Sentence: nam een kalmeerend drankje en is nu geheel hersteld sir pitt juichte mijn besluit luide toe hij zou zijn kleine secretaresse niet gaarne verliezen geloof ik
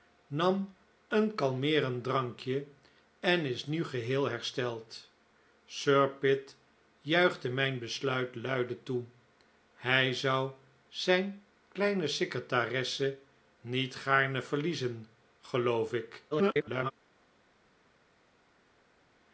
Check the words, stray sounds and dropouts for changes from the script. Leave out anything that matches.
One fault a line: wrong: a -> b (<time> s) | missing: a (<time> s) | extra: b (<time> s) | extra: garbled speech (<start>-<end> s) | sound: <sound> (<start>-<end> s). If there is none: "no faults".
extra: garbled speech (16.3-16.9 s)